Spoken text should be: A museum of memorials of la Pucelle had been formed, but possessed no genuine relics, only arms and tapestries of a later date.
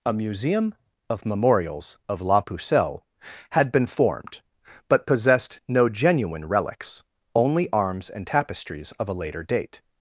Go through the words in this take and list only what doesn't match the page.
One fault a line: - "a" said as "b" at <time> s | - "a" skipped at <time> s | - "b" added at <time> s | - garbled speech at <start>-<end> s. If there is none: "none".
none